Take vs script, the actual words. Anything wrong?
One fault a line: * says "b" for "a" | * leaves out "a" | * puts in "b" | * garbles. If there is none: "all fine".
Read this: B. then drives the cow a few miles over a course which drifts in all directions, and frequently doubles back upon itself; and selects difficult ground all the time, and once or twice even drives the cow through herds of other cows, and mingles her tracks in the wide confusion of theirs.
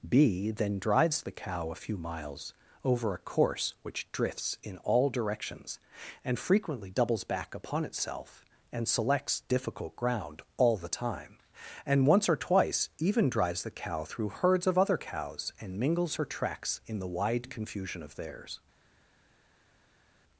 all fine